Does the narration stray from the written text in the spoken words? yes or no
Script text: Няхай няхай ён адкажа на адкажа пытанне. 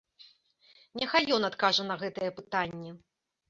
yes